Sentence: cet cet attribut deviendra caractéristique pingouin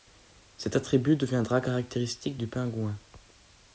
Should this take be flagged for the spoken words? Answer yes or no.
yes